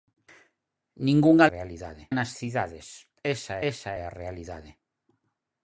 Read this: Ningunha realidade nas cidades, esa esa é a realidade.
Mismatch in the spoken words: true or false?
false